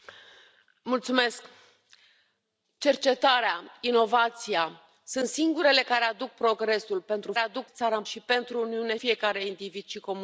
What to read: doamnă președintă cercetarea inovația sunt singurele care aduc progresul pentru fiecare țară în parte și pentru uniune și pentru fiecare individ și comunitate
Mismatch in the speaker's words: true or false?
true